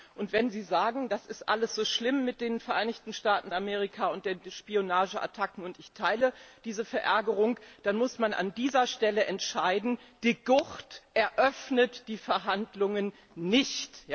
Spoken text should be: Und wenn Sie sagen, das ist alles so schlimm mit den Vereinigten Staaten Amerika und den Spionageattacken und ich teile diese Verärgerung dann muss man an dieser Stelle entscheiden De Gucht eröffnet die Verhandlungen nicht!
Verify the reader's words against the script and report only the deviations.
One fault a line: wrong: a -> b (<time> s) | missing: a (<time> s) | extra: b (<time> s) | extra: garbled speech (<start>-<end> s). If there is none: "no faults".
no faults